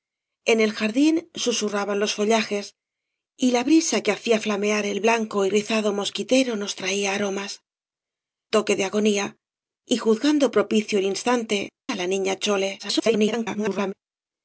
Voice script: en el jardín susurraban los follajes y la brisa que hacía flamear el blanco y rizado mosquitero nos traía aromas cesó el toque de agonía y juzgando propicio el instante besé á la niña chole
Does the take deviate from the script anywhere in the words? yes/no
yes